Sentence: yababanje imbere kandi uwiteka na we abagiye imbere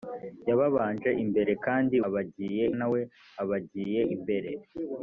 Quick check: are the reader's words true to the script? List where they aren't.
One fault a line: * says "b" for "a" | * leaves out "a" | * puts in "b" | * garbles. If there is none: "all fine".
* says "abagiye" for "uwiteka"